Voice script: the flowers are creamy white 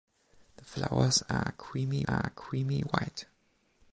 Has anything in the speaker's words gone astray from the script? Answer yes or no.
yes